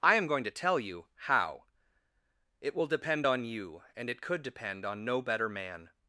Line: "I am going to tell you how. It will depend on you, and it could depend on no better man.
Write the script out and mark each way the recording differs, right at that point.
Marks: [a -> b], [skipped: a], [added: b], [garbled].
"I am going to tell you how. It will depend on you, and it could depend on no better man.